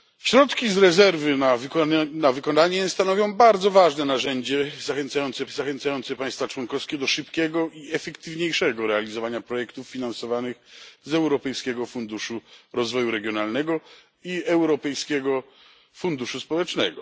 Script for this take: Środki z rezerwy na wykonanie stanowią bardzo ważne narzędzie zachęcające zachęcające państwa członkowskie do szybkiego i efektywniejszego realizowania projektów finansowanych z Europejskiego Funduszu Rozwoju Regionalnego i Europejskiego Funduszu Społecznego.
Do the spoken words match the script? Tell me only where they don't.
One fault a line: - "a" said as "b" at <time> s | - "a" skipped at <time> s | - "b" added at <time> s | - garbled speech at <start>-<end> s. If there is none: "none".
none